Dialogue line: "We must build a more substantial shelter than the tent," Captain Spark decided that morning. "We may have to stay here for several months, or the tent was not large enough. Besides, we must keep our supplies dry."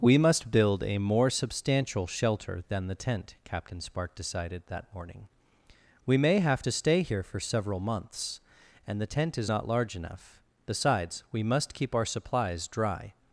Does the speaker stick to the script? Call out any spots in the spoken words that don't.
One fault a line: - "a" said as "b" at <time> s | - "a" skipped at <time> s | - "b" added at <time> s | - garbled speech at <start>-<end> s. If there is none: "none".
- "or" said as "and" at 8.9 s
- "was" said as "is" at 9.4 s